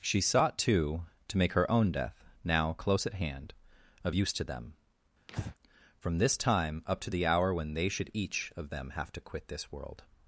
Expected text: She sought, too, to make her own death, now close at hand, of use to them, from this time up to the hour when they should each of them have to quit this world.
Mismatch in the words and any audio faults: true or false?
true